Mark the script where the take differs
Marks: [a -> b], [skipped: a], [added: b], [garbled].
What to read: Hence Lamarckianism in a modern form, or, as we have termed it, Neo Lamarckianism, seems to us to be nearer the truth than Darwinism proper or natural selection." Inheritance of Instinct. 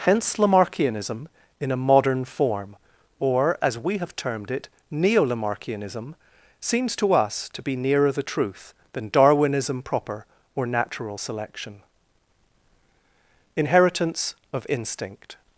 Hence Lamarckianism in a modern form, or, as we have termed it, Neo Lamarckianism, seems to us to be nearer the truth than Darwinism proper or natural selection." Inheritance of Instinct.